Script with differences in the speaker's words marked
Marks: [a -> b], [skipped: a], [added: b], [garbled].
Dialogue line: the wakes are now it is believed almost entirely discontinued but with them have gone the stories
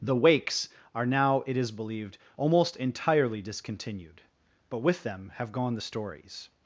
the wakes are now it is believed almost entirely discontinued but with them have gone the stories